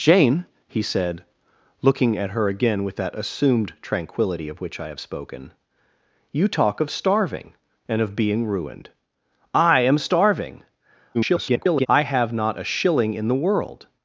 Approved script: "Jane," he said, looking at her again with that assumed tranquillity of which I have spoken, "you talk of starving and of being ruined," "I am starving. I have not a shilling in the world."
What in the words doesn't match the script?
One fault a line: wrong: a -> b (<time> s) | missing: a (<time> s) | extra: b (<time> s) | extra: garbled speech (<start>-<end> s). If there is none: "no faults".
extra: garbled speech (11.1-11.9 s)